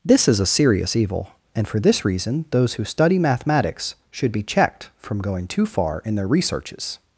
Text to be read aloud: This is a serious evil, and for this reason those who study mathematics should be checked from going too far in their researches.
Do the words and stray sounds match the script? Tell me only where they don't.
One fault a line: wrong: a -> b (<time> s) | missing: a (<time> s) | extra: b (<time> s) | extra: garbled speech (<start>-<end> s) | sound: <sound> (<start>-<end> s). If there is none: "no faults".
no faults